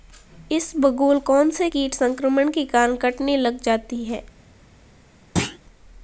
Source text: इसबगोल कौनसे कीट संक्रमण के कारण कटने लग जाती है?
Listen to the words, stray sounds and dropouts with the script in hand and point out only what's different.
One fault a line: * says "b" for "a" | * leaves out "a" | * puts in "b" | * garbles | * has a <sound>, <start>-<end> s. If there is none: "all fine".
* has a thud, 5.4-5.6 s